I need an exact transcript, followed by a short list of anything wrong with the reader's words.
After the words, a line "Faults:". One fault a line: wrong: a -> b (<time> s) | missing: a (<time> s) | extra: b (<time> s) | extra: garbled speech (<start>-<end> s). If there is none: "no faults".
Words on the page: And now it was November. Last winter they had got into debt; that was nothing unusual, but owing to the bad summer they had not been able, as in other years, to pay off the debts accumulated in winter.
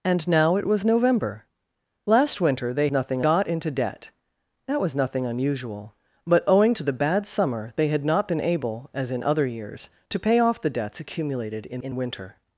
And now it was November. Last winter they nothing got into debt; that was nothing unusual, but owing to the bad summer they had not been able, as in other years, to pay off the debts accumulated in in winter.
Faults:
wrong: had -> nothing (2.9 s)
extra: in (11.8 s)